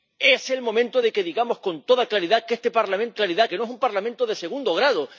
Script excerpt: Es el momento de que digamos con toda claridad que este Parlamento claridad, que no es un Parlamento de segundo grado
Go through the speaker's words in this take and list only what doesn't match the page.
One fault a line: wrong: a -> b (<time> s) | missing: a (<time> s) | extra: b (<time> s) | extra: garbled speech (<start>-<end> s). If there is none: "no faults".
no faults